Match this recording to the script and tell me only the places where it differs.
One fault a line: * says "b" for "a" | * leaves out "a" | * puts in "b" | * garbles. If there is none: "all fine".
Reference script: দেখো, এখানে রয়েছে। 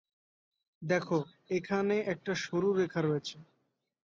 * puts in "একটা সরু রেখা"